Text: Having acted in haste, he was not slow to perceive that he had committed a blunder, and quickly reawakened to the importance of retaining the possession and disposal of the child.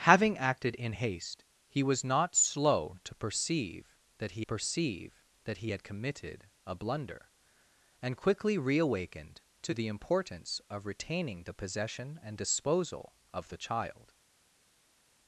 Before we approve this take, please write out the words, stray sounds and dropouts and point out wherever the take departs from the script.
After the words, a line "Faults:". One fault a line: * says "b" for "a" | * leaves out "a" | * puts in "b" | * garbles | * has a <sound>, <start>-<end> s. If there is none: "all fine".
Having acted in haste, he was not slow to perceive that he perceive that he had committed a blunder, and quickly reawakened to the importance of retaining the possession and disposal of the child.
Faults:
* puts in "perceive that he"